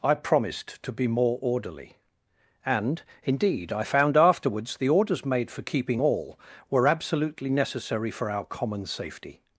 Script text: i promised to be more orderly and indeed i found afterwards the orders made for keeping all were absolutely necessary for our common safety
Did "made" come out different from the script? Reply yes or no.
no